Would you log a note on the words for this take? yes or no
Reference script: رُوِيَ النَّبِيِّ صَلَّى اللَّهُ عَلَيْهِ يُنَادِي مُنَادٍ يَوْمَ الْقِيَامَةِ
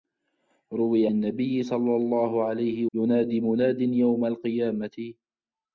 no